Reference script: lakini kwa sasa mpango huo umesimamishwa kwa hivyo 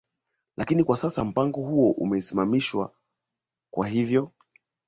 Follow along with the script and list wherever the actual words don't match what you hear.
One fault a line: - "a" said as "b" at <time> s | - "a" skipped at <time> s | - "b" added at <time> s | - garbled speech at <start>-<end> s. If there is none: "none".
none